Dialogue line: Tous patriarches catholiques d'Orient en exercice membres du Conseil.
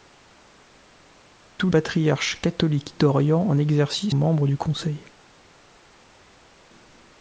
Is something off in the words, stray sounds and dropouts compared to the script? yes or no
no